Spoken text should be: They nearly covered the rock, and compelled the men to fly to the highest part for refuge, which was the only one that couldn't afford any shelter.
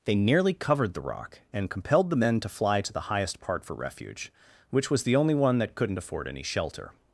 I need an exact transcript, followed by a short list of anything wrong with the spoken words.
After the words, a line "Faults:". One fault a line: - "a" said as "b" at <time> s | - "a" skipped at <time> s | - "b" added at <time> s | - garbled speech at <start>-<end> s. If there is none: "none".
They nearly covered the rock, and compelled the men to fly to the highest part for refuge, which was the only one that couldn't afford any shelter.
Faults:
none